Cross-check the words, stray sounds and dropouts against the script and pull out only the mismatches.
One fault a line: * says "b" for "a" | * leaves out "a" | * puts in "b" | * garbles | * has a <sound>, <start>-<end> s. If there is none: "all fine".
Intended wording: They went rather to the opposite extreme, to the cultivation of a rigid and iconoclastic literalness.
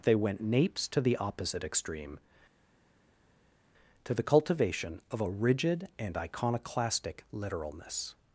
* says "napes" for "rather"